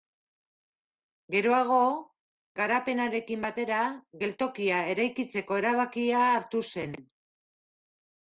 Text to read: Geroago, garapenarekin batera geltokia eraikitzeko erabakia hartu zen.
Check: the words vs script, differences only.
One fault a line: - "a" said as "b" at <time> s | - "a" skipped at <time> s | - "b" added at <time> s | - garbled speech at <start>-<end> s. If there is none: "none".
none